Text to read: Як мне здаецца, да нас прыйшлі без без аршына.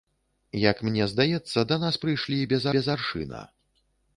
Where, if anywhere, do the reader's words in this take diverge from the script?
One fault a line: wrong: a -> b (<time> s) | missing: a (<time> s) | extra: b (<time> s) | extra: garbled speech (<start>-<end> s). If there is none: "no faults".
no faults